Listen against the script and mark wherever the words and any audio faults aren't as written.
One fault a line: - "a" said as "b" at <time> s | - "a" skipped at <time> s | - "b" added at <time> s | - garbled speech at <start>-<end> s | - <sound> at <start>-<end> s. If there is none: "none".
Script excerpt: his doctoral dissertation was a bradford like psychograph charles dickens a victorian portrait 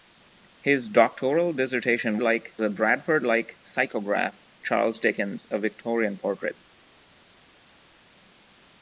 - "was" said as "like" at 2.2 s